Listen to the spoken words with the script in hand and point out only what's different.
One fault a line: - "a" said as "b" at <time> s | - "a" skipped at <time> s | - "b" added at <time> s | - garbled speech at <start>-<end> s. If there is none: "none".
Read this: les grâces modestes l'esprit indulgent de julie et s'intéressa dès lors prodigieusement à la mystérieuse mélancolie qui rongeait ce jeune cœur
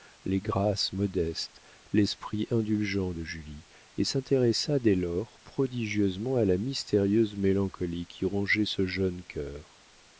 none